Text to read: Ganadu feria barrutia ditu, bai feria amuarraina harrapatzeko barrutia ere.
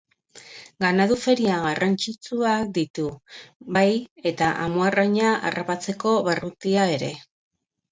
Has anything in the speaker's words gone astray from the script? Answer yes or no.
yes